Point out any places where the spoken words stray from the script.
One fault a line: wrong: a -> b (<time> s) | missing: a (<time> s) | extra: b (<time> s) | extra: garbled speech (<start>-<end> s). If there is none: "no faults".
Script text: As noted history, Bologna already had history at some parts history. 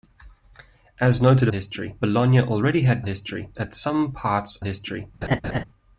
no faults